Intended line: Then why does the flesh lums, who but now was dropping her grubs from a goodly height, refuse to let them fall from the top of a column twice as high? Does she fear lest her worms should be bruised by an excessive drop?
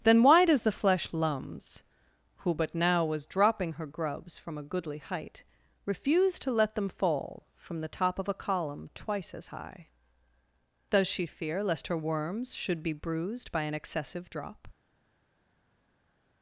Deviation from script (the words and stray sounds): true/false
false